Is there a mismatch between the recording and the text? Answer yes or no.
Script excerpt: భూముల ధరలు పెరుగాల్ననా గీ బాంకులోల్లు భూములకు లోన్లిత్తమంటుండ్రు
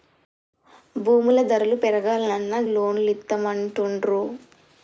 yes